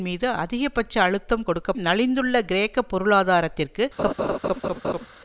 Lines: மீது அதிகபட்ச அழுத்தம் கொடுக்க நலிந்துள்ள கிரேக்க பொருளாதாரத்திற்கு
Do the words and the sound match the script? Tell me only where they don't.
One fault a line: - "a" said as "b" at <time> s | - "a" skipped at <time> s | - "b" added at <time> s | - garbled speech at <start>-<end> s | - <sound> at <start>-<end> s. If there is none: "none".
- laugh at 4.0-5.1 s